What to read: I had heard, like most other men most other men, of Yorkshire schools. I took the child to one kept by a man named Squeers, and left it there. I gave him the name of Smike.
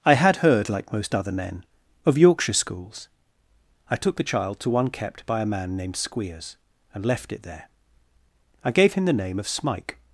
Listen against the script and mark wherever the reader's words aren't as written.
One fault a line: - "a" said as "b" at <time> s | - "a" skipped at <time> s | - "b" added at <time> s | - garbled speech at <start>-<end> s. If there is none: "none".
- "most other men" skipped at 1.6 s